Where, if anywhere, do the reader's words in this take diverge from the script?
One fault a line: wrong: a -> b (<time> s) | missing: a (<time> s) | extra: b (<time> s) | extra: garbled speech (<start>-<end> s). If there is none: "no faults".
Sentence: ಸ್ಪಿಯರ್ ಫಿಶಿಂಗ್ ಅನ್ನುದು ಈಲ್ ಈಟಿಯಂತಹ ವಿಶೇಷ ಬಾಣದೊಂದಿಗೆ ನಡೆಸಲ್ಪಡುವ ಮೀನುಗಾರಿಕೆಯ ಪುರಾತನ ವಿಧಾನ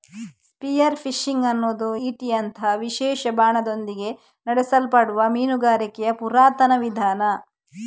missing: ಈಲ್ (1.9 s)